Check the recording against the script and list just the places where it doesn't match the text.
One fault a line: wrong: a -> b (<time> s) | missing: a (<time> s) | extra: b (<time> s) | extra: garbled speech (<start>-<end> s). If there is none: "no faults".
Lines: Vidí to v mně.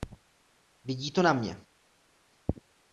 wrong: v -> na (1.2 s)